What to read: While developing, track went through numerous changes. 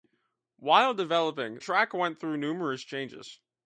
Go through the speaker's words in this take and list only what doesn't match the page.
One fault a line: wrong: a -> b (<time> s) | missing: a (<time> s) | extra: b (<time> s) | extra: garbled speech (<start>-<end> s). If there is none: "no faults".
no faults